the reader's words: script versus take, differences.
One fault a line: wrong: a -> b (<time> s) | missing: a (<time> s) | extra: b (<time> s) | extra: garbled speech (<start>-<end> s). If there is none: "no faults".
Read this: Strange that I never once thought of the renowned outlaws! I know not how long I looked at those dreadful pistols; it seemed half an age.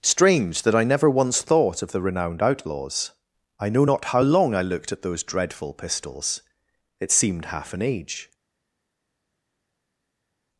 no faults